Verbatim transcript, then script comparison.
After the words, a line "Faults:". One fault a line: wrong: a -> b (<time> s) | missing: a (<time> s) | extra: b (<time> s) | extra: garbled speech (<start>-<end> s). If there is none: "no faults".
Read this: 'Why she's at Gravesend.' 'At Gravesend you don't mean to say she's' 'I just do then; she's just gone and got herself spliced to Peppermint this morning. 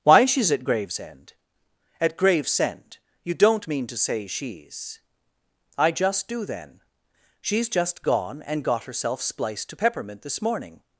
'Why she's at Gravesend.' 'At Gravesend you don't mean to say she's' 'I just do then; she's just gone and got herself spliced to Peppermint this morning.
Faults:
no faults